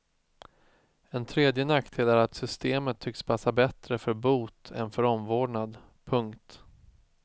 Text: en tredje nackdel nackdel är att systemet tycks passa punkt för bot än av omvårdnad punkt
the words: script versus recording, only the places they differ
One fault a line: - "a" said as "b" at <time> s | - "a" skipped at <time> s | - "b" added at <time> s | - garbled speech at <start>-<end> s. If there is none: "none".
- "nackdel" skipped at 2.1 s
- "punkt" said as "bättre" at 3.5 s
- "av" said as "för" at 4.9 s